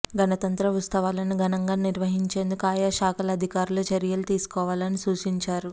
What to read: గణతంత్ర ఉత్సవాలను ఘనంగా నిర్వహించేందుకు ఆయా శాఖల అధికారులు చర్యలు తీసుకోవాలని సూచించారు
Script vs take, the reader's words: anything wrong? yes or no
no